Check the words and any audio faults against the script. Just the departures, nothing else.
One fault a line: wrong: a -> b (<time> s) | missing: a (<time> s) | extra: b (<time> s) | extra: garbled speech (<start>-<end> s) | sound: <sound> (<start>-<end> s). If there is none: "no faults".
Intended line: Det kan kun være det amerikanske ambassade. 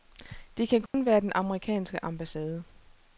sound: dropout (0.9-0.9 s)
wrong: det -> den (1.2 s)